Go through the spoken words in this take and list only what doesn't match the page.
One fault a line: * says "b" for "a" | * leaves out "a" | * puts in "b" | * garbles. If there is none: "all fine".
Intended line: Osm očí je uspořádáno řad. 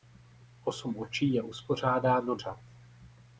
all fine